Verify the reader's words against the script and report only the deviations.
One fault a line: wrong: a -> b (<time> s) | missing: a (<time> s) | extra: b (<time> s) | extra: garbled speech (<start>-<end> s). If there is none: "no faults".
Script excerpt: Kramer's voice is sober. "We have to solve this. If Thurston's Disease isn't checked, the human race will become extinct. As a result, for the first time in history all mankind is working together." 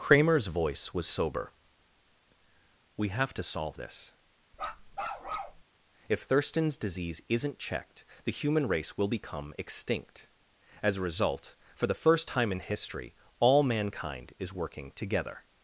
wrong: is -> was (0.9 s)